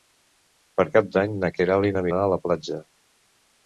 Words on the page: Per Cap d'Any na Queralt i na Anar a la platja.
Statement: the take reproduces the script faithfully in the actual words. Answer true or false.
true